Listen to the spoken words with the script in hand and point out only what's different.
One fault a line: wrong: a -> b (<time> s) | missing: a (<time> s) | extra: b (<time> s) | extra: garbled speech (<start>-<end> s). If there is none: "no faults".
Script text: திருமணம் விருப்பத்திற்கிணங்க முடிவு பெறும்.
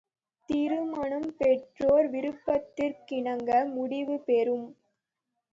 extra: பெற்றோர் (1.4 s)